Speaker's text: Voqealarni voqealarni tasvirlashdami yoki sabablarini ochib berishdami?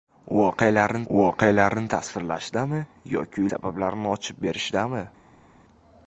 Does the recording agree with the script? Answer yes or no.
yes